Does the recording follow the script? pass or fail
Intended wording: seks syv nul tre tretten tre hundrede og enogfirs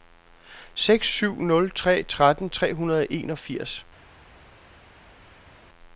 pass